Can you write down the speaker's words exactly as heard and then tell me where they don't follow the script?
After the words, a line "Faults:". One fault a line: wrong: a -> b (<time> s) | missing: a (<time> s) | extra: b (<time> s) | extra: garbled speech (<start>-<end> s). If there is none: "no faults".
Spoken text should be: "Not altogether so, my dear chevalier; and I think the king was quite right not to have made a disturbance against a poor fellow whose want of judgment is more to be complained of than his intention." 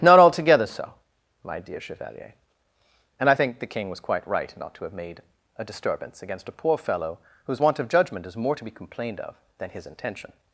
"Not altogether so, my dear chevalier; and I think the king was quite right not to have made a disturbance against a poor fellow whose want of judgment is more to be complained of than his intention."
Faults:
no faults